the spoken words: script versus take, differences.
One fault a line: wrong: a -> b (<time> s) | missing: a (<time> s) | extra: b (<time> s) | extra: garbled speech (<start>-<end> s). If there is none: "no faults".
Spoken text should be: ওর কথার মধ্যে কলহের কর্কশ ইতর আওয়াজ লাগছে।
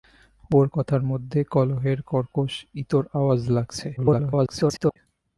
extra: garbled speech (4.0-5.0 s)